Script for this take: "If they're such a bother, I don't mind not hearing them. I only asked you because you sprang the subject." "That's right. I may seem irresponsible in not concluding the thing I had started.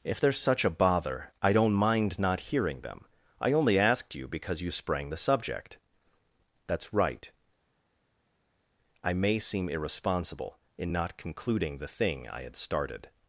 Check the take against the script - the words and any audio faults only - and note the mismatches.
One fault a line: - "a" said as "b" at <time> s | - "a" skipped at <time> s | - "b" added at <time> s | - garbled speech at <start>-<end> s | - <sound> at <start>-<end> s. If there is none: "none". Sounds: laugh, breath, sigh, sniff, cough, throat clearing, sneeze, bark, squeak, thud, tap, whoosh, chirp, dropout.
none